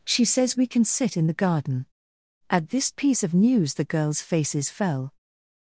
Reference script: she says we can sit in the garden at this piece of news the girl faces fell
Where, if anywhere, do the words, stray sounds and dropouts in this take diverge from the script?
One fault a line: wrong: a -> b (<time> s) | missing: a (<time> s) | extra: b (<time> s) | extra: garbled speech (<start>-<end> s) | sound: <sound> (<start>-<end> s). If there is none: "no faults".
wrong: girl -> girls (3.8 s)